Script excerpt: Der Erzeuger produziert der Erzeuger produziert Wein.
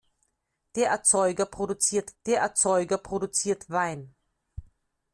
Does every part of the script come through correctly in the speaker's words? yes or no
yes